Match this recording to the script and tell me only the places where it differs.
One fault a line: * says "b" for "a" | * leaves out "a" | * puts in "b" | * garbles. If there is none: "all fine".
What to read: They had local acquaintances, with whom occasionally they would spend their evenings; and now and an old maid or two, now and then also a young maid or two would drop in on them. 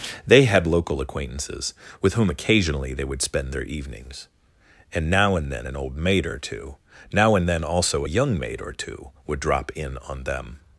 * puts in "then"